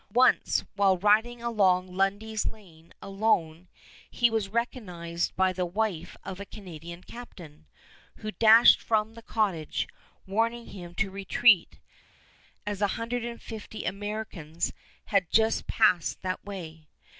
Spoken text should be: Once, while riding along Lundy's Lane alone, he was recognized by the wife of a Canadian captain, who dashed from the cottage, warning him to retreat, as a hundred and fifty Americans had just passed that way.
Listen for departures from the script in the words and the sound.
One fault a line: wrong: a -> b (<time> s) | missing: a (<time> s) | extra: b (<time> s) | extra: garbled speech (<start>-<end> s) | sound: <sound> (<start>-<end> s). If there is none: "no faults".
no faults